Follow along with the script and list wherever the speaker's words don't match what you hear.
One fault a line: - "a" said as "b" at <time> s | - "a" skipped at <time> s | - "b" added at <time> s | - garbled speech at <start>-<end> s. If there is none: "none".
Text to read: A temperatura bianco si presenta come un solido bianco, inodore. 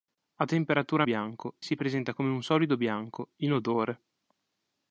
none